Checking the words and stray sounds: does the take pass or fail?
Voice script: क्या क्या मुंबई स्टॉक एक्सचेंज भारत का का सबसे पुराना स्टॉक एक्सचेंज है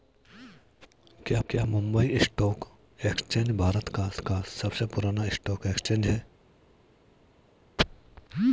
pass